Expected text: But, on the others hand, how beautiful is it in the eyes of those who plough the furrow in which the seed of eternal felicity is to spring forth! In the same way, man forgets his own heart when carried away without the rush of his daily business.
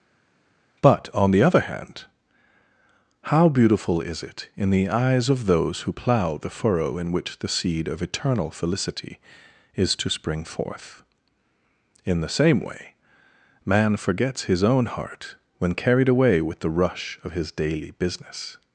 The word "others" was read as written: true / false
false